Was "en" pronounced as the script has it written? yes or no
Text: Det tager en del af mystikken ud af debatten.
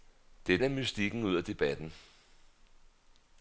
no